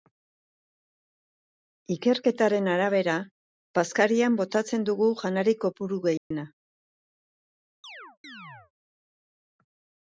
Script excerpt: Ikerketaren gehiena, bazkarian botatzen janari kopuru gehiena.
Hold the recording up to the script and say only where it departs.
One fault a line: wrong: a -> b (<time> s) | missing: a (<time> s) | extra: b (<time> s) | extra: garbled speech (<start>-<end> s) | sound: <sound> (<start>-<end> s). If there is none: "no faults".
wrong: gehiena -> arabera (2.8 s)
extra: dugu (4.9 s)
sound: dropout (6.2-6.3 s)
sound: chirp (7.8-8.7 s)